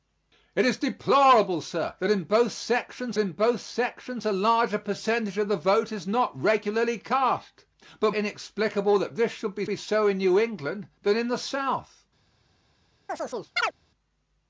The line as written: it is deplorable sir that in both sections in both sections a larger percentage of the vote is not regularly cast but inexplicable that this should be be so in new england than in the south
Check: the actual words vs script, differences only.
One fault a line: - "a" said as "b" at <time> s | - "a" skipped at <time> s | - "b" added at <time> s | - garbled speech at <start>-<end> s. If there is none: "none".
none